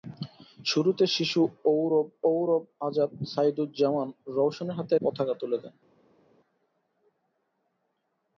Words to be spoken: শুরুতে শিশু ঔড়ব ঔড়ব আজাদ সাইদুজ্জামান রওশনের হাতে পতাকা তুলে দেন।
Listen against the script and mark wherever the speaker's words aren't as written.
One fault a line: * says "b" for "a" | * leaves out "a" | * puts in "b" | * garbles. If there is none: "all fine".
all fine